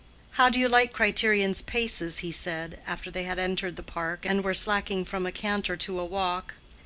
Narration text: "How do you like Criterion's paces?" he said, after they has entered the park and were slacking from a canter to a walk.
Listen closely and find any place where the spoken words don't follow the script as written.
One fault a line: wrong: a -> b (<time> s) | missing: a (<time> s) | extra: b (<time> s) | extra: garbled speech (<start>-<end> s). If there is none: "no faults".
wrong: has -> had (3.2 s)